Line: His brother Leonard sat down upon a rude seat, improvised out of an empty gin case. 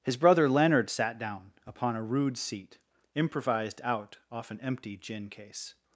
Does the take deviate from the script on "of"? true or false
true